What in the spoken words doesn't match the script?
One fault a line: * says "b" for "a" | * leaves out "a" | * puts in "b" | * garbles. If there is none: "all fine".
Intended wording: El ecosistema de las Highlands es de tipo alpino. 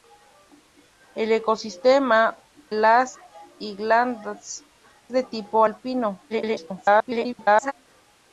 * leaves out "de"
* leaves out "es"
* garbles